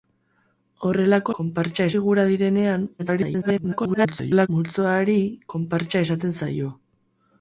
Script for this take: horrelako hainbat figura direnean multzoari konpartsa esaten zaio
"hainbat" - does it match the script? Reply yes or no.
no